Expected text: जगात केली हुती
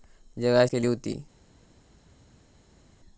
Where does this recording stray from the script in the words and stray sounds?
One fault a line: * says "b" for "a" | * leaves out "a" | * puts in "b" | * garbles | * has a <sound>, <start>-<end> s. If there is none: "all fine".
all fine